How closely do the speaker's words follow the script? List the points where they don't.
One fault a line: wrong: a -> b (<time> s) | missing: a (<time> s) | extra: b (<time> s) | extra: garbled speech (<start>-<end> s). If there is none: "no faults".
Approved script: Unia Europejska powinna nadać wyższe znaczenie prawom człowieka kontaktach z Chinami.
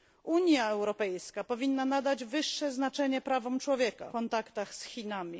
no faults